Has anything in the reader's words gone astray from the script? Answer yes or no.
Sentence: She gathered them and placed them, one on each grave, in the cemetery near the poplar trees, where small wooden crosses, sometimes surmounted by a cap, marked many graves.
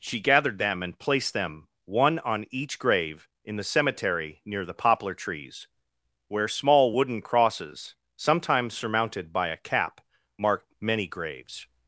no